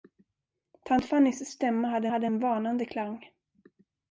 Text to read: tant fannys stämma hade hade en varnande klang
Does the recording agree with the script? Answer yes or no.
yes